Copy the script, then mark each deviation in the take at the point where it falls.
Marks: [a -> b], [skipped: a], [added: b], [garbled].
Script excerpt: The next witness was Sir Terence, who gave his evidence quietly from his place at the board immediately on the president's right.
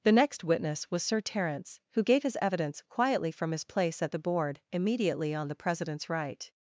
The next witness was Sir Terence, who gave his evidence quietly from his place at the board immediately on the president's right.